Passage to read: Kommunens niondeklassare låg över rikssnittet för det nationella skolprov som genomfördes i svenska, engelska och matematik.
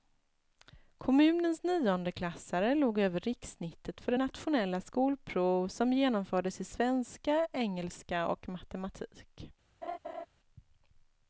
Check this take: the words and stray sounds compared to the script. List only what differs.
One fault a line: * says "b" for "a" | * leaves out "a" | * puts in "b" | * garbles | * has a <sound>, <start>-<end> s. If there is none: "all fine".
* has a laugh, 9.8-10.3 s